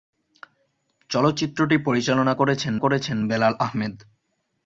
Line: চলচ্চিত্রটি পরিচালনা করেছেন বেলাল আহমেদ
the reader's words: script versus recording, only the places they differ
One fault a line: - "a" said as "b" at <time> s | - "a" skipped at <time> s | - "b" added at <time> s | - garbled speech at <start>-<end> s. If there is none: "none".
- "করেছেন" added at 2.7 s